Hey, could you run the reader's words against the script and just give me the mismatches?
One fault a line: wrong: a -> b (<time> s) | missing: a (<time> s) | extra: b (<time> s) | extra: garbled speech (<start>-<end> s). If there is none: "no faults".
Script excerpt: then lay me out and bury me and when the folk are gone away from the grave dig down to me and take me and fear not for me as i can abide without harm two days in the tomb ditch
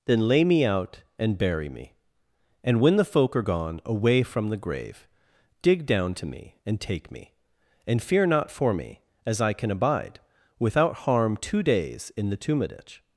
no faults